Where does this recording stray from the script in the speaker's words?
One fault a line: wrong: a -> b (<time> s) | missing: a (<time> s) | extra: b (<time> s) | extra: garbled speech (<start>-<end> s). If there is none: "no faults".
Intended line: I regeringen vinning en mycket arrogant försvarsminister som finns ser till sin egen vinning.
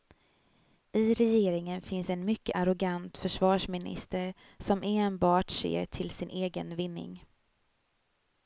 wrong: vinning -> finns (1.8 s)
wrong: finns -> enbart (4.8 s)